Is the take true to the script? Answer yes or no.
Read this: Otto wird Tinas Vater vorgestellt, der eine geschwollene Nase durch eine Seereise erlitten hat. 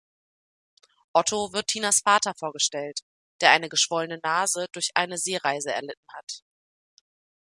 yes